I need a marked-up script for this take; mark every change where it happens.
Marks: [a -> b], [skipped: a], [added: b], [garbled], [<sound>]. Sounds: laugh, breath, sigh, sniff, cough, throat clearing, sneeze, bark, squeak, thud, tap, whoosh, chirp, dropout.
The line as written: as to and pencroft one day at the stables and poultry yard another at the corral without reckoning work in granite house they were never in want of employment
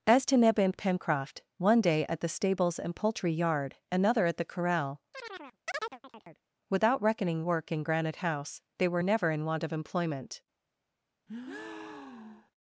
as to [added: neb] and pencroft one day at the stables and poultry yard another at the corral [chirp] without reckoning work in granite house they were never in want of employment [breath]